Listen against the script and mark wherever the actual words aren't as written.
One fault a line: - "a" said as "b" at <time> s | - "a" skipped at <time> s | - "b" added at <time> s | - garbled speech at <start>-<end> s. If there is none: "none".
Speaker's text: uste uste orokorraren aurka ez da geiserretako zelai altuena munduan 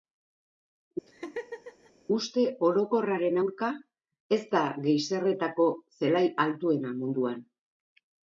- "uste" skipped at 2.4 s